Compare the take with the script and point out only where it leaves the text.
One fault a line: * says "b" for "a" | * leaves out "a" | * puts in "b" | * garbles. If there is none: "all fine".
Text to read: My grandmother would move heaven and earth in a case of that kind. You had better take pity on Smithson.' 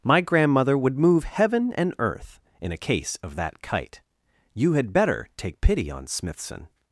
* says "kite" for "kind"